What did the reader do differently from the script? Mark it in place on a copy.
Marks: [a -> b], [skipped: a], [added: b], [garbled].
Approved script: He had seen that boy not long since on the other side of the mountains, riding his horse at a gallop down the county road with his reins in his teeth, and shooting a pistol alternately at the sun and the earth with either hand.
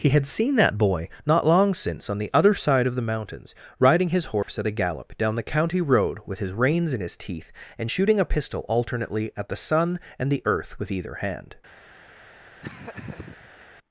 He had seen that boy not long since on the other side of the mountains, riding his horse at a gallop down the county road with his reins in his teeth, and shooting a pistol alternately at the sun and the earth with either hand.